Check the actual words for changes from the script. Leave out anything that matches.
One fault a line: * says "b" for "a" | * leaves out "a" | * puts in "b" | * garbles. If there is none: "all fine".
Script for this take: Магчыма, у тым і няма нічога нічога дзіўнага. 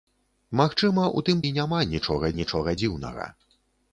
all fine